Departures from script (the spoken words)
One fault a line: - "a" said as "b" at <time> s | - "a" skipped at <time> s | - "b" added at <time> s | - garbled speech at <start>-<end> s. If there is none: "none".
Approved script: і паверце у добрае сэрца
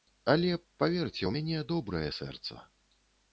- "і" said as "але" at 0.3 s
- "мяне" added at 1.4 s